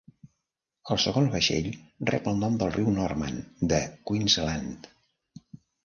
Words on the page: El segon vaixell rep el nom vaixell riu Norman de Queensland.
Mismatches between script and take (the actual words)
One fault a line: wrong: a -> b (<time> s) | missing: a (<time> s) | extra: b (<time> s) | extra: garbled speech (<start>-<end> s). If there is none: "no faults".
wrong: vaixell -> del (2.6 s)